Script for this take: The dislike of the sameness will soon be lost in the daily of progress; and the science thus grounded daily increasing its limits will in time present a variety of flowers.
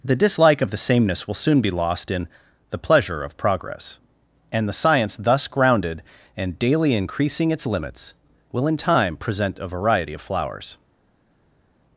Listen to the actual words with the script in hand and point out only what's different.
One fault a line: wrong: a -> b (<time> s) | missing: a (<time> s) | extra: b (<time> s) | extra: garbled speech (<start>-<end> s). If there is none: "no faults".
wrong: daily -> pleasure (2.8 s)
extra: and (6.3 s)